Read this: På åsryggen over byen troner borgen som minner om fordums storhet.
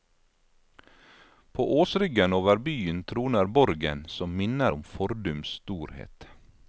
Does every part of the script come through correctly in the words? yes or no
yes